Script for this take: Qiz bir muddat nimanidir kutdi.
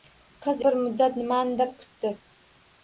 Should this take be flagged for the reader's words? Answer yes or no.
no